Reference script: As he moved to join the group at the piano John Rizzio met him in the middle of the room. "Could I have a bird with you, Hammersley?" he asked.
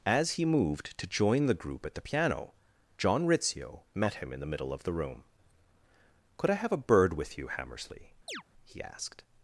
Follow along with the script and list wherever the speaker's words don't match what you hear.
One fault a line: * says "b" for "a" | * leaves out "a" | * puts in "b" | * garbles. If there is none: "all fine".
all fine